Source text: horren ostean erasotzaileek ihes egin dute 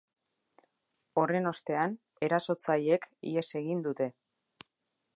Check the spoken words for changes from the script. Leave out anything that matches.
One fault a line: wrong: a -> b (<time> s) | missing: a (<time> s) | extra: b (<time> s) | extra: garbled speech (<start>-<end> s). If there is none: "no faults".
no faults